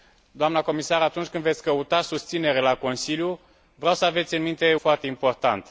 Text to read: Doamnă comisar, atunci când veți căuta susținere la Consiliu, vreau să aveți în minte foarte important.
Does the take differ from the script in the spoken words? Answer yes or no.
no